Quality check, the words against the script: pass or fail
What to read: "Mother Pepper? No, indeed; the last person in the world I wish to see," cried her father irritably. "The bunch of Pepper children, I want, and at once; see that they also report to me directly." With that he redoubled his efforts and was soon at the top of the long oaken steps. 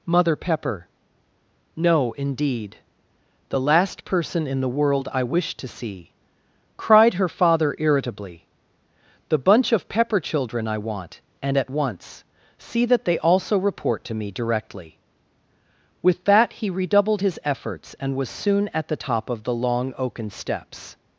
pass